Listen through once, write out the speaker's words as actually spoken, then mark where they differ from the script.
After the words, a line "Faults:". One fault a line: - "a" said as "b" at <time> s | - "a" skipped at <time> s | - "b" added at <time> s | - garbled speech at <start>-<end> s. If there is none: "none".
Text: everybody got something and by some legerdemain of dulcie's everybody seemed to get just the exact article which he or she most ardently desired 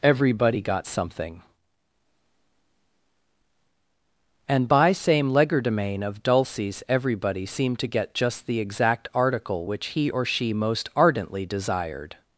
everybody got something and by same legerdemain of dulcie's everybody seemed to get just the exact article which he or she most ardently desired
Faults:
- "some" said as "same" at 4.9 s